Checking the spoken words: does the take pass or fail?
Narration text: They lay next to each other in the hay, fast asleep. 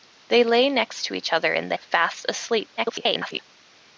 fail